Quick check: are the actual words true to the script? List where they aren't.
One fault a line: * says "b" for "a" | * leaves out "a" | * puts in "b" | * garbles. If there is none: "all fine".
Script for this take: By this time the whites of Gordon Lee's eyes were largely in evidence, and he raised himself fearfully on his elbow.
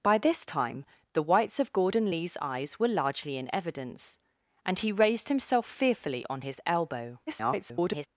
* garbles